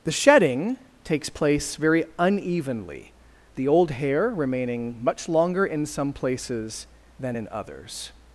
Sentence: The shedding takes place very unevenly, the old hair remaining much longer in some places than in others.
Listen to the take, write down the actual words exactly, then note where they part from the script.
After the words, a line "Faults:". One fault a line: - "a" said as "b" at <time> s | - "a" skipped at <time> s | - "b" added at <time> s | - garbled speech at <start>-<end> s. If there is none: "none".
The shedding takes place very unevenly, the old hair remaining much longer in some places than in others.
Faults:
none